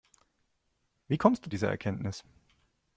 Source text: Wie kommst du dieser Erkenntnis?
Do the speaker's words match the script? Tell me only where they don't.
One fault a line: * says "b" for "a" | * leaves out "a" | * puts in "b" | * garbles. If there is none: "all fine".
all fine